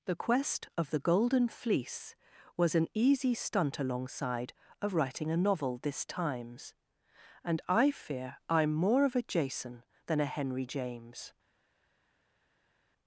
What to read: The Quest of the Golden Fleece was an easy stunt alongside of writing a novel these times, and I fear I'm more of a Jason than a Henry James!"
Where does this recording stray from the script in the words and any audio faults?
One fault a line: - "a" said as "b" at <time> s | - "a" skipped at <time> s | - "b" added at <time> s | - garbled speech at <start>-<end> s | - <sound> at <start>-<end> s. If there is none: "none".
- "these" said as "this" at 5.8 s